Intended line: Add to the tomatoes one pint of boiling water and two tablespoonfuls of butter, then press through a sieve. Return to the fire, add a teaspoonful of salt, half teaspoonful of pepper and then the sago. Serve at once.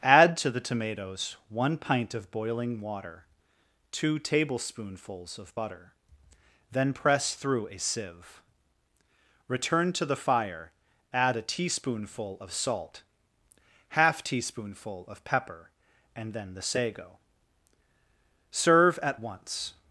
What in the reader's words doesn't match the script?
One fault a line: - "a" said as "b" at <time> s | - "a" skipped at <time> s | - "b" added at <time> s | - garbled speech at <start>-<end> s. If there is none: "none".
- "and" skipped at 3.2 s